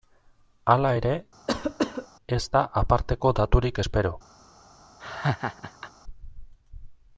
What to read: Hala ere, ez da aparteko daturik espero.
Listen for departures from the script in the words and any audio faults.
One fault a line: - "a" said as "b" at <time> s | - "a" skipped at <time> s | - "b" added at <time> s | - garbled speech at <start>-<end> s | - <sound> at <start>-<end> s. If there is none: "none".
- cough at 1.5-2.1 s
- laugh at 5.0-5.9 s